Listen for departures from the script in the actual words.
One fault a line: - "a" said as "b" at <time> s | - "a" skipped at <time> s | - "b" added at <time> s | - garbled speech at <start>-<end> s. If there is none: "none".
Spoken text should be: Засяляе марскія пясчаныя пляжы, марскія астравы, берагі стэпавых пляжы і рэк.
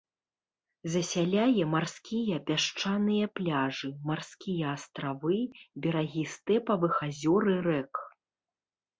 - "пляжы" said as "азёр" at 7.1 s